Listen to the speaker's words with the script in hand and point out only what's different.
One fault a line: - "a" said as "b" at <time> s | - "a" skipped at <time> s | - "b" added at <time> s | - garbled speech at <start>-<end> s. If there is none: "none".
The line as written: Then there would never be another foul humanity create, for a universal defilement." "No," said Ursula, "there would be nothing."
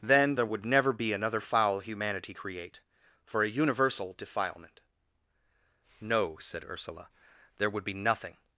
none